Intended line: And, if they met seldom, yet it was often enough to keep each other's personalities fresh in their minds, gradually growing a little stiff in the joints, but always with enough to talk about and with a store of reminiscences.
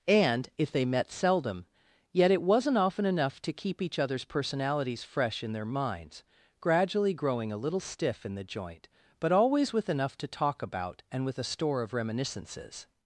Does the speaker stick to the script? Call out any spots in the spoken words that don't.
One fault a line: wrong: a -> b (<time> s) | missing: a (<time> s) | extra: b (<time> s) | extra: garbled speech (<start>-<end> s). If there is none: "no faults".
wrong: was -> wasn't (2.4 s)
wrong: joints -> joint (8.4 s)